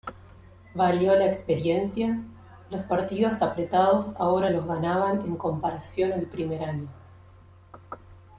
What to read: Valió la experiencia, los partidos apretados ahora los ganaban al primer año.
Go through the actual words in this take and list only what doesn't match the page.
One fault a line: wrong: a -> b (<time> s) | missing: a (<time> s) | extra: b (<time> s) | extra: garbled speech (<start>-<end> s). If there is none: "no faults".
extra: en comparación (5.2 s)